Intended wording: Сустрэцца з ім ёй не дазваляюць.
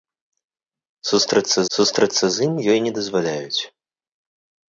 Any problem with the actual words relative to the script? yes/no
yes